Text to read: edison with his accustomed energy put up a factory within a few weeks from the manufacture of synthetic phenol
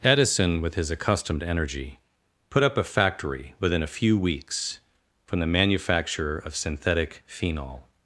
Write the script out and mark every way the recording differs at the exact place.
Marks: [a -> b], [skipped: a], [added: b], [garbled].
edison with his accustomed energy put up a factory within a few weeks from the manufacture of synthetic phenol